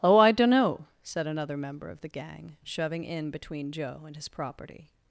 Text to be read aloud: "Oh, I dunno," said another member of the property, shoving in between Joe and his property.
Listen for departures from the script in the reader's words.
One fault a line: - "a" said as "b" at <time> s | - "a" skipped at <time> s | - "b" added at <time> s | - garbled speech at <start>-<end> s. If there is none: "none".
- "property" said as "gang" at 2.1 s